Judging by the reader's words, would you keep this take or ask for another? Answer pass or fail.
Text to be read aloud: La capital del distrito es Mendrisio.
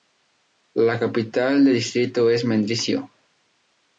pass